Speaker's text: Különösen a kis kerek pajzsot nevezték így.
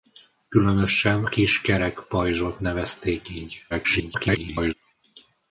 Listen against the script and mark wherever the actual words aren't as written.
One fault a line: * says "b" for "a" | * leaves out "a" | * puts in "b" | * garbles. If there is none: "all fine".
* leaves out "a"
* garbles